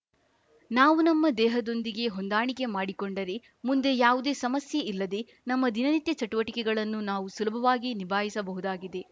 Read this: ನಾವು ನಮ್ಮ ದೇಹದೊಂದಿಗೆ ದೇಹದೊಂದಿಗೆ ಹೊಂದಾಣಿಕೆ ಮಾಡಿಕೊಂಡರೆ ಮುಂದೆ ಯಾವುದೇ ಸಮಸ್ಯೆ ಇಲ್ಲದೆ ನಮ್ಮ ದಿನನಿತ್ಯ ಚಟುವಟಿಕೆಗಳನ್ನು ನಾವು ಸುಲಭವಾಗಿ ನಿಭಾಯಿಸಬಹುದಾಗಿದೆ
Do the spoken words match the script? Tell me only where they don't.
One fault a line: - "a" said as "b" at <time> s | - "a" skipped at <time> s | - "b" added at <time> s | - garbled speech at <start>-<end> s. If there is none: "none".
- "ದೇಹದೊಂದಿಗೆ" skipped at 2.0 s